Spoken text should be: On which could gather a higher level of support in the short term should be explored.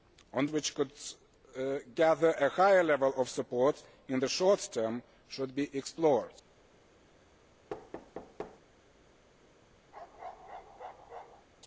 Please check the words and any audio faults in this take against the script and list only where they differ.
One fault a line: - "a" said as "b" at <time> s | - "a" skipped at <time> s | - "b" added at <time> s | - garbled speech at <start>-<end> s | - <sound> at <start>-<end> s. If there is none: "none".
- thud at 7.7-8.6 s
- bark at 9.9-11.5 s